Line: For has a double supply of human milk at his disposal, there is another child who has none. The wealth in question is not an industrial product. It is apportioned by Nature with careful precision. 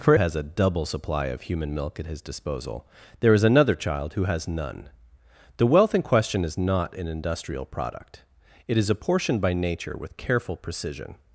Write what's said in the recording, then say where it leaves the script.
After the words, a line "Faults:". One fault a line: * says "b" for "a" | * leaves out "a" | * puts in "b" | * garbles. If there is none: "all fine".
For has a double supply of human milk at his disposal, there is another child who has none. The wealth in question is not an industrial product. It is apportioned by Nature with careful precision.
Faults:
all fine